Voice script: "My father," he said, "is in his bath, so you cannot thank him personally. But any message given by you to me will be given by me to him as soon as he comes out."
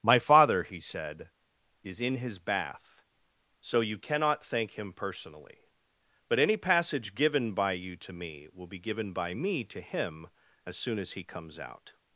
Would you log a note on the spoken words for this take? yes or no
yes